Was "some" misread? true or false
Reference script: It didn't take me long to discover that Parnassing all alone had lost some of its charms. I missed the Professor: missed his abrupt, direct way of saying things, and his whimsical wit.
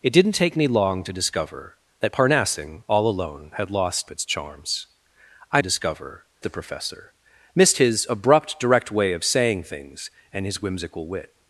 true